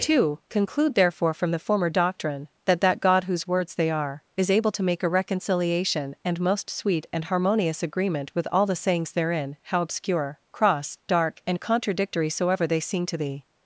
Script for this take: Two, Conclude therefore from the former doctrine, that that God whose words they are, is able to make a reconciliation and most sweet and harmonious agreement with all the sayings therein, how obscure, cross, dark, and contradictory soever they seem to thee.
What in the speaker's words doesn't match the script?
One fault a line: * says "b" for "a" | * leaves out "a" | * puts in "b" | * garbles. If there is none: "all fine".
all fine